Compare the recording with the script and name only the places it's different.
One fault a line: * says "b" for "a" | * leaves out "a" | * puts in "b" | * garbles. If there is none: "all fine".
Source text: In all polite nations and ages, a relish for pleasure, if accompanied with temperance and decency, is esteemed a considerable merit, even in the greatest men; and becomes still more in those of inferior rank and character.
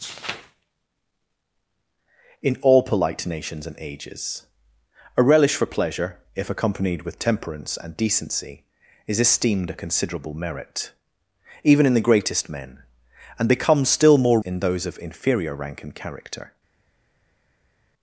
all fine